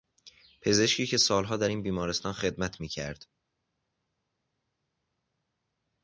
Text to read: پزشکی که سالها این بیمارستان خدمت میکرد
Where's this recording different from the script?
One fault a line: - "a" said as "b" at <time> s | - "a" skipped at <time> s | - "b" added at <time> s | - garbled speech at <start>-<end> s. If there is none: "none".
- "در" added at 1.6 s